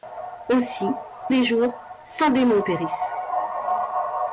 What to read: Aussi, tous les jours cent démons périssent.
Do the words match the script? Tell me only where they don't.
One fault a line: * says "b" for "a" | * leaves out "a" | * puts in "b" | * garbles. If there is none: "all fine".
* leaves out "tous"